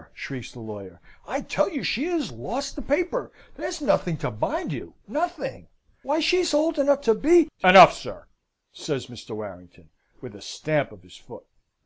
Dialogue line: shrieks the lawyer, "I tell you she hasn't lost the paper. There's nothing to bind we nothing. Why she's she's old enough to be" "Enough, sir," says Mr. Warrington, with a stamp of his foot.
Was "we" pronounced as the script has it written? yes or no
no